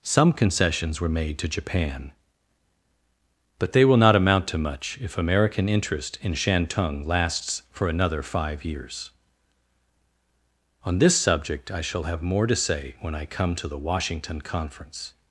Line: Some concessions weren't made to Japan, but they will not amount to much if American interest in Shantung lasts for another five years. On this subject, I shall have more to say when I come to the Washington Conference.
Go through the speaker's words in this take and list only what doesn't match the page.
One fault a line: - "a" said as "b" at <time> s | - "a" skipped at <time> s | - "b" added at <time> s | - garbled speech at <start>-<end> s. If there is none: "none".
- "weren't" said as "were" at 1.0 s